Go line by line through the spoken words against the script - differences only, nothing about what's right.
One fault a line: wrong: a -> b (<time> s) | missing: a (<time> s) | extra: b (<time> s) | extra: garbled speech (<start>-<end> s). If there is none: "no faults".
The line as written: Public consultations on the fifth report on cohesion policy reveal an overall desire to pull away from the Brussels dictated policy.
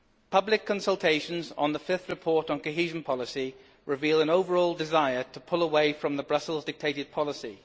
no faults